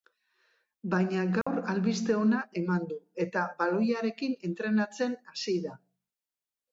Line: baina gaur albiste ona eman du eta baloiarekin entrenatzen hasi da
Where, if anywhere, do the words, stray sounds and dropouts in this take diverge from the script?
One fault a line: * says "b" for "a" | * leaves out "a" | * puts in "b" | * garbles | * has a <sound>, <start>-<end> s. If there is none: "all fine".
* has a dropout, 1.4-1.5 s